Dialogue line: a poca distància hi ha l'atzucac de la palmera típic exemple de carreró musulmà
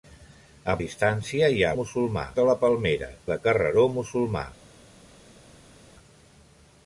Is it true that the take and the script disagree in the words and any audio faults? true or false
true